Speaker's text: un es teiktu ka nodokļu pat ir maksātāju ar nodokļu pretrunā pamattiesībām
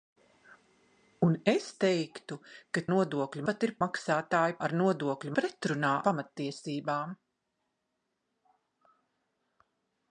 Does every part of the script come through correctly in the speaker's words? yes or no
yes